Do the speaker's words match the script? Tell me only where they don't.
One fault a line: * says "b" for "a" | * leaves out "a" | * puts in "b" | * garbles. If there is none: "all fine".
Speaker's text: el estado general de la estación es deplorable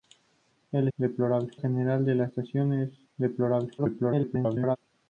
* says "deplorable" for "estado"
* garbles